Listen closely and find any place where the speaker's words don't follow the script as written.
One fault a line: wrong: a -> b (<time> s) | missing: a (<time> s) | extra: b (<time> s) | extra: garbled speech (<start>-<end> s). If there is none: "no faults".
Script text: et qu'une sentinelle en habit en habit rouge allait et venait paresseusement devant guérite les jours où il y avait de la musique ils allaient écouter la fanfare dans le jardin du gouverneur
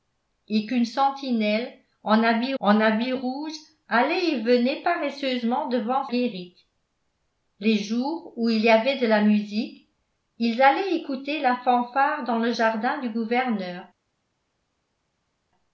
no faults